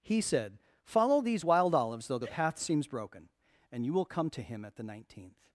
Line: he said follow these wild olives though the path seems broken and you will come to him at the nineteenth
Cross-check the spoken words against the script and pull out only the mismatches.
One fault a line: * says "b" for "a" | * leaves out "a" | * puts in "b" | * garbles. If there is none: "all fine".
all fine